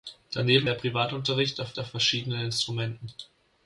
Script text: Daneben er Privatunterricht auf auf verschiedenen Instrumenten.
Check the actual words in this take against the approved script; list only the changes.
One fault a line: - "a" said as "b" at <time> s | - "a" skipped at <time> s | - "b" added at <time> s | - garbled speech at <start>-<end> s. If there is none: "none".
none